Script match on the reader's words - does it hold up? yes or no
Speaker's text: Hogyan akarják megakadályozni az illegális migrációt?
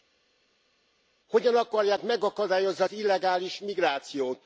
yes